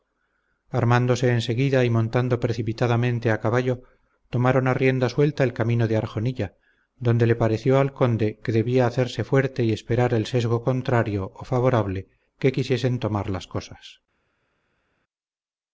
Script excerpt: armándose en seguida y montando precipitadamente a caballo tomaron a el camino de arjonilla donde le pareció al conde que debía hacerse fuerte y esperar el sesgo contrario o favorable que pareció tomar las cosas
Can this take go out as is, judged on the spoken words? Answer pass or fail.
fail